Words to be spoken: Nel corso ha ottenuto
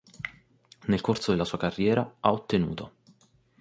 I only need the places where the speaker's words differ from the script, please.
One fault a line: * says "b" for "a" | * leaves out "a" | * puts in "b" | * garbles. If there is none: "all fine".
* puts in "della sua carriera"